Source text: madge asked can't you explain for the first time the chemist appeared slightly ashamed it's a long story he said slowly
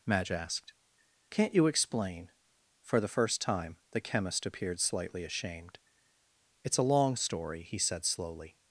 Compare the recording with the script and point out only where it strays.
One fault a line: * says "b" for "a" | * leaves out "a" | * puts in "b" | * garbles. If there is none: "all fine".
all fine